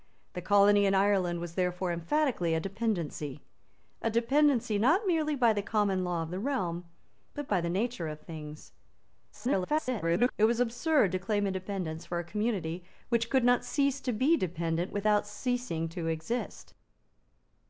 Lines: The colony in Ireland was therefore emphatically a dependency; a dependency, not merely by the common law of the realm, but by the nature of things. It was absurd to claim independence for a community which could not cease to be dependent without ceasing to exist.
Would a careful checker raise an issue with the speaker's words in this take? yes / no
yes